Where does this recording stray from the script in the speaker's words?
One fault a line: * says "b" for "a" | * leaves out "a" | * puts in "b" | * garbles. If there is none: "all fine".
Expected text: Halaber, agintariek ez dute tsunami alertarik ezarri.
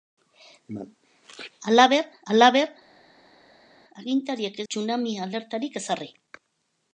* puts in "halaber"
* leaves out "dute"